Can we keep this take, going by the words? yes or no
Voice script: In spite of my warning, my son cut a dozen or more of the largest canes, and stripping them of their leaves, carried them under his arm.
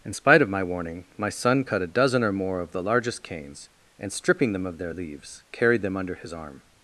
yes